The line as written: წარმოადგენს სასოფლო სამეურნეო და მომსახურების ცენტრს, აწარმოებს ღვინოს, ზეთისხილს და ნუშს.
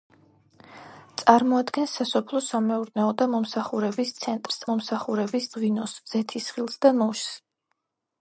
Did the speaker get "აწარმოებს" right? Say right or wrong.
wrong